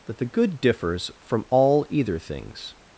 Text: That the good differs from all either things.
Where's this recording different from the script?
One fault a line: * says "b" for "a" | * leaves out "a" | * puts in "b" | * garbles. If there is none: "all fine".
all fine